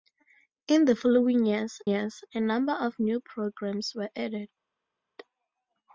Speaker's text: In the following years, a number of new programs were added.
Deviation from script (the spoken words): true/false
true